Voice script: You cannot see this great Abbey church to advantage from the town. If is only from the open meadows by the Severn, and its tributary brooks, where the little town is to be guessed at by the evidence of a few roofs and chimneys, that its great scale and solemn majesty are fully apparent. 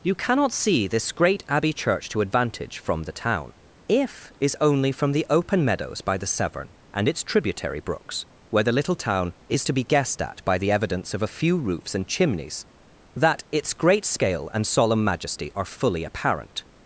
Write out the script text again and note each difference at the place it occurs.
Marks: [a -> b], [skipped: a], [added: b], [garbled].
You cannot see this great Abbey church to advantage from the town. If is only from the open meadows by the Severn, and its tributary brooks, where the little town is to be guessed at by the evidence of a few roofs and chimneys, that its great scale and solemn majesty are fully apparent.